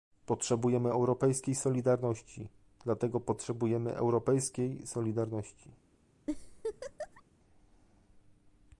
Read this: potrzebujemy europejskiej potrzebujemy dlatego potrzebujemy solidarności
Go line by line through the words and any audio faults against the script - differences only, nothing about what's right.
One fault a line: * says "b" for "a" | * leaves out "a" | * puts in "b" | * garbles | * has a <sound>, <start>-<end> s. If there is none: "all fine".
* says "solidarności" for "potrzebujemy"
* puts in "europejskiej"
* has a laugh, 6.3-7.2 s